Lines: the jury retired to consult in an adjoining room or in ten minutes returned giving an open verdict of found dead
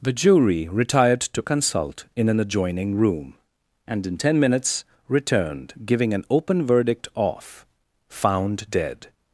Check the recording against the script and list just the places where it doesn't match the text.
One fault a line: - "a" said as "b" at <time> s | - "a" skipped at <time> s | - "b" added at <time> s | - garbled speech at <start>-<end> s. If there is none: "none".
- "or" said as "and" at 3.8 s